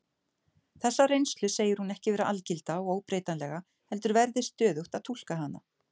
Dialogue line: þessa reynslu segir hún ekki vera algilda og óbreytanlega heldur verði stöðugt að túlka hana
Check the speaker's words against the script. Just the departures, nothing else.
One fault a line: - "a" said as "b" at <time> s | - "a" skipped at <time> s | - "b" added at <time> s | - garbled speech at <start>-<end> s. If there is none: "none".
none